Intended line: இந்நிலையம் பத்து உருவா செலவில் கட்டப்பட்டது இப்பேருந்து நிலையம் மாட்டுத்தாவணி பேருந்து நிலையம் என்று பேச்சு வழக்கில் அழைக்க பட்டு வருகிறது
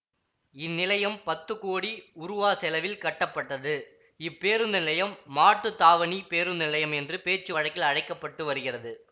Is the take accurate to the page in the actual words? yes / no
no